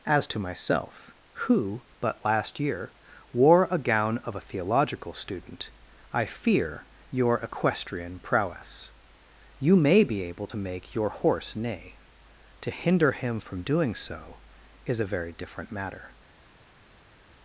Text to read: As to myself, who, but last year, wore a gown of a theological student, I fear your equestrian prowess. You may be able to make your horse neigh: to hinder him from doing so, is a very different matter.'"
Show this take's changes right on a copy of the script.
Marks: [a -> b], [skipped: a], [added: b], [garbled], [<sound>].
As to myself, who, but last year, wore a gown of a theological student, I fear your equestrian prowess. You may be able to make your horse neigh: to hinder him from doing so, is a very different matter.'"